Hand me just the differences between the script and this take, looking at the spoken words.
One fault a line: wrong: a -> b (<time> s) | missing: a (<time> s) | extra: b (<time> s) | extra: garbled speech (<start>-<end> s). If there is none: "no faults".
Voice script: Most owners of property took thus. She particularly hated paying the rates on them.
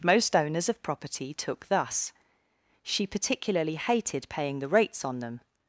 no faults